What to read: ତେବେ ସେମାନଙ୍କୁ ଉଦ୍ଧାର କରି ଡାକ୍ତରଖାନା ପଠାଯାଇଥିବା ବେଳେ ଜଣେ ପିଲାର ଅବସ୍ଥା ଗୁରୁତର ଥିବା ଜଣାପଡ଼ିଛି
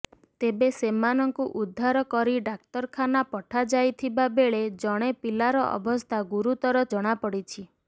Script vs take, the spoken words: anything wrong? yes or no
yes